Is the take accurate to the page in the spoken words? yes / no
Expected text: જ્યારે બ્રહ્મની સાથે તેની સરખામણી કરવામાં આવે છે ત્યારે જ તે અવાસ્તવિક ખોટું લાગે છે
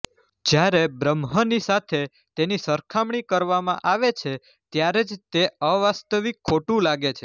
yes